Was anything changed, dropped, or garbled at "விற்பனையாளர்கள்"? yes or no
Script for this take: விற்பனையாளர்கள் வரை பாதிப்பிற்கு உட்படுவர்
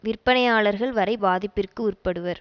no